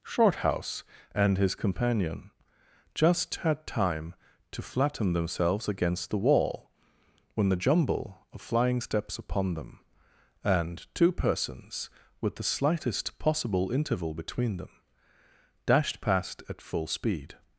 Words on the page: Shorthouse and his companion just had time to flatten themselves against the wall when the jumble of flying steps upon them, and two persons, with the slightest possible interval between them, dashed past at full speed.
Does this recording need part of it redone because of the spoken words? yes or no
no